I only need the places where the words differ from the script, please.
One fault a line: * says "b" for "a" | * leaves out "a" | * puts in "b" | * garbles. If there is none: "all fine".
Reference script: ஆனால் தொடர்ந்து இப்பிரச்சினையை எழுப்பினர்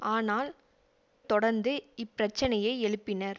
all fine